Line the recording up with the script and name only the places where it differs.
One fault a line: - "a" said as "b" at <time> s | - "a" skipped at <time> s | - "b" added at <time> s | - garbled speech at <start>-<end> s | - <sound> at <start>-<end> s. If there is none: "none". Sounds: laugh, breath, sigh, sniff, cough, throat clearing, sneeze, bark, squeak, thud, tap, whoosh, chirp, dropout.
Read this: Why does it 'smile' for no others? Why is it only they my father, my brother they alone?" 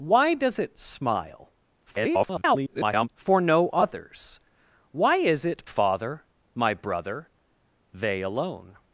- garbled speech at 1.8-3.1 s
- "only they my" skipped at 5.6 s